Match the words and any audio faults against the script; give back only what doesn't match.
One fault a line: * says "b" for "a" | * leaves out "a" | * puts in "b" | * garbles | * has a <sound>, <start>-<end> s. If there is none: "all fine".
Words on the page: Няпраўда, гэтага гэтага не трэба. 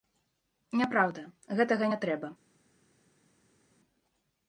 * leaves out "гэтага"